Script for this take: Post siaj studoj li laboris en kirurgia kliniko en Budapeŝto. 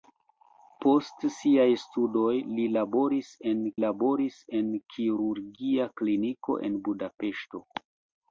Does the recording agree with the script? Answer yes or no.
no